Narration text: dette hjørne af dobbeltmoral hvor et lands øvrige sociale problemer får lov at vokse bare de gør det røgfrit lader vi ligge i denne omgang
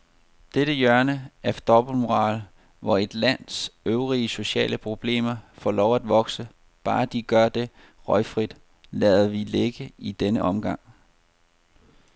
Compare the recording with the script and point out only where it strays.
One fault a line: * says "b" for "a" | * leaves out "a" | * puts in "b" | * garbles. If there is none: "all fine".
all fine